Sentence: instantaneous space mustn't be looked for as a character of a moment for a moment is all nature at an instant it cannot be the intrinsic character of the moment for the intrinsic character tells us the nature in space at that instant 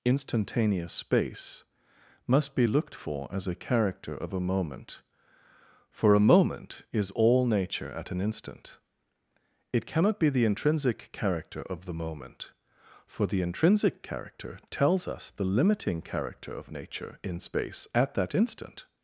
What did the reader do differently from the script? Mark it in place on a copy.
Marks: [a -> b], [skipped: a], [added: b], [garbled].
instantaneous space [mustn't -> must] be looked for as a character of a moment for a moment is all nature at an instant it cannot be the intrinsic character of the moment for the intrinsic character tells us the [added: limiting character of] nature in space at that instant